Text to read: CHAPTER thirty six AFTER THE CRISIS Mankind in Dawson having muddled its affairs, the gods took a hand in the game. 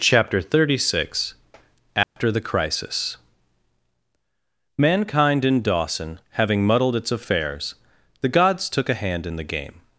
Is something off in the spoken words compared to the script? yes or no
no